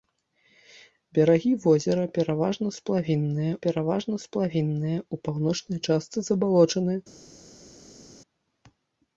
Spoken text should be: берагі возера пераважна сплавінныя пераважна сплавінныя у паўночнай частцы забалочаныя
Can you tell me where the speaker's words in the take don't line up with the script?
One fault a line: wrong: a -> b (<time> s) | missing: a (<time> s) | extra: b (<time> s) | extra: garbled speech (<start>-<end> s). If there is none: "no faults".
no faults